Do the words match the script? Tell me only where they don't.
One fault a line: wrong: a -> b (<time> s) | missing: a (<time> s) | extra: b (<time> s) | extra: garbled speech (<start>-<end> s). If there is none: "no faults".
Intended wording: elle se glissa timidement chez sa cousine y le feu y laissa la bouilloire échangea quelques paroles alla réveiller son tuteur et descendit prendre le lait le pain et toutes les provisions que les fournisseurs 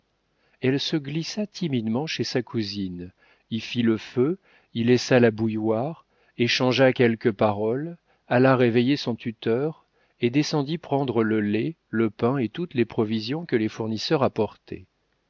extra: fit (3.6 s)